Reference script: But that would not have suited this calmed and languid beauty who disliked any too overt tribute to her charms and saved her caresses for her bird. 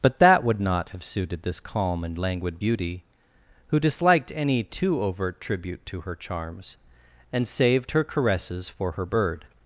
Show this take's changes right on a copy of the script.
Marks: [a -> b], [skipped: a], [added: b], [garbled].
But that would not have suited this [calmed -> calm] and languid beauty who disliked any too overt tribute to her charms and saved her caresses for her bird.